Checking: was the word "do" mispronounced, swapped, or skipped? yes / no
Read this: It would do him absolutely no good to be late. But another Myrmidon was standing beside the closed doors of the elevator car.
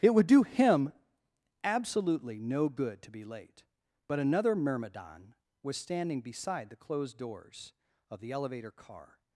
no